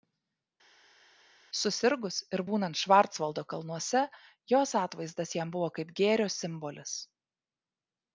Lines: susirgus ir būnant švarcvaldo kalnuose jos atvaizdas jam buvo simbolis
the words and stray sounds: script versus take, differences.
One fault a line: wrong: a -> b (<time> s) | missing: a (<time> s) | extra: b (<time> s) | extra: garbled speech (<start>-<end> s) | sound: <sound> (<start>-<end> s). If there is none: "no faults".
extra: kaip gėrio (5.8 s)